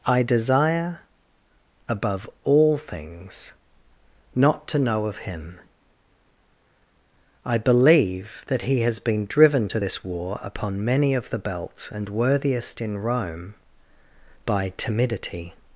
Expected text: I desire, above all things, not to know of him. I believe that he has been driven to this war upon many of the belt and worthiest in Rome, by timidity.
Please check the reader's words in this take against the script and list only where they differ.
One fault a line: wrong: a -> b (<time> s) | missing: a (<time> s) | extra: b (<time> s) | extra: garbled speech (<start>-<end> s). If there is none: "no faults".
no faults